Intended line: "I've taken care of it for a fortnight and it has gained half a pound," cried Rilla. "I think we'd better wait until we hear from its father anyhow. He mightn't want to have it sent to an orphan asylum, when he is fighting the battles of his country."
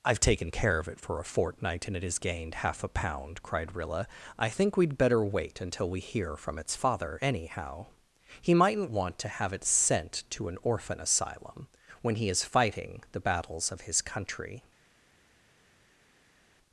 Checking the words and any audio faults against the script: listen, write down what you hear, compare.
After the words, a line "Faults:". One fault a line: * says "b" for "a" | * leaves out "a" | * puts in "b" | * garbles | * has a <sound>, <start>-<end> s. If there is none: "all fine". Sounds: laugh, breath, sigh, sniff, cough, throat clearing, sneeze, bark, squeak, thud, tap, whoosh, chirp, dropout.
"I've taken care of it for a fortnight and it has gained half a pound," cried Rilla. "I think we'd better wait until we hear from its father anyhow. He mightn't want to have it sent to an orphan asylum, when he is fighting the battles of his country."
Faults:
all fine